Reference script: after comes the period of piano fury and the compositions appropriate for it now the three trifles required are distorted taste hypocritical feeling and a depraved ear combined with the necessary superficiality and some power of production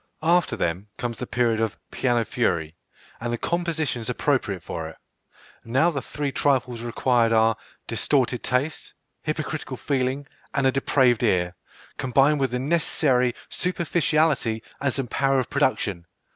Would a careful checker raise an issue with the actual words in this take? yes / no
yes